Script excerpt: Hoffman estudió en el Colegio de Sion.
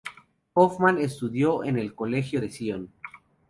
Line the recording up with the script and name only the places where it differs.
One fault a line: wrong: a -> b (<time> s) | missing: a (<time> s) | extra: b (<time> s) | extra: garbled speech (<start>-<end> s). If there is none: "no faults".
no faults